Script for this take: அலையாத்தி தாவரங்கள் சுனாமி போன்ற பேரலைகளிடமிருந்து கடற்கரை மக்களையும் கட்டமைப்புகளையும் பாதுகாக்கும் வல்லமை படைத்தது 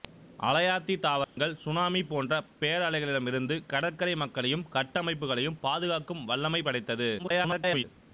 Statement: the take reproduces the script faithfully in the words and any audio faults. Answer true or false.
false